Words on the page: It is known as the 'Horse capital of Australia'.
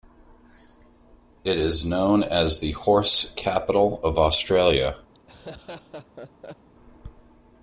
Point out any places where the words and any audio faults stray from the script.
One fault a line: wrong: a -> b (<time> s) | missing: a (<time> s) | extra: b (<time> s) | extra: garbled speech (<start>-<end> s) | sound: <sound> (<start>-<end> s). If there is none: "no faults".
sound: laugh (5.1-6.7 s)